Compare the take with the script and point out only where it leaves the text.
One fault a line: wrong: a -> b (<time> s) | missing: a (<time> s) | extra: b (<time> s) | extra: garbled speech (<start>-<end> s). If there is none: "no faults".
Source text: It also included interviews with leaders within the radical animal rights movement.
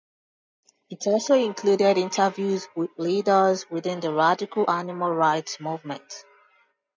no faults